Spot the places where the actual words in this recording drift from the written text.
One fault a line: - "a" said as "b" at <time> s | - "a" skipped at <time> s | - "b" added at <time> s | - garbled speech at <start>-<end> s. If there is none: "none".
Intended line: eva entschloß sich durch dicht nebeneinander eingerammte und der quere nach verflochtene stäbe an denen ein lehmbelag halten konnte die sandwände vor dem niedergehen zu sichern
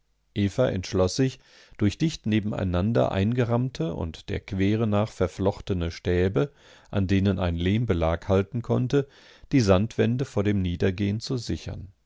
none